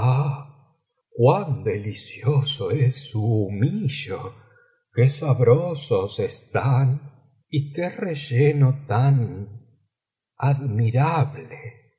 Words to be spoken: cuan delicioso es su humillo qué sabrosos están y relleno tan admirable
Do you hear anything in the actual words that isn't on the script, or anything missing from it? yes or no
yes